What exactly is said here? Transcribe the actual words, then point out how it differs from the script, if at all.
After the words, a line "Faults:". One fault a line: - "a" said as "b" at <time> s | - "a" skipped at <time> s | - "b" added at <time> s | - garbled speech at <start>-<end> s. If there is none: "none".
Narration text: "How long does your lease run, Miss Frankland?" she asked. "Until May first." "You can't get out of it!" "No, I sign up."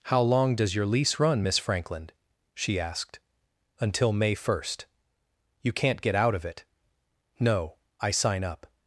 "How long does your lease run, Miss Frankland?" she asked. "Until May first." "You can't get out of it!" "No, I sign up."
Faults:
none